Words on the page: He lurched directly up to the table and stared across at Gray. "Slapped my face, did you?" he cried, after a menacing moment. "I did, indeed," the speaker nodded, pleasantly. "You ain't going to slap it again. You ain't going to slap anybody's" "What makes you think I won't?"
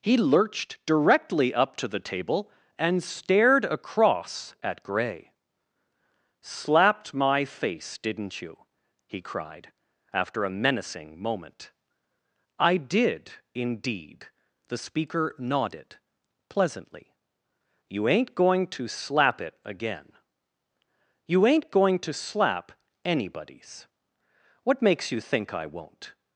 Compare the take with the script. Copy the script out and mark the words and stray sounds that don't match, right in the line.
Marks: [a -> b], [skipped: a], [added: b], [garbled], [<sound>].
He lurched directly up to the table and stared across at Gray. "Slapped my face, [did -> didn't] you?" he cried, after a menacing moment. "I did, indeed," the speaker nodded, pleasantly. "You ain't going to slap it again. You ain't going to slap anybody's" "What makes you think I won't?"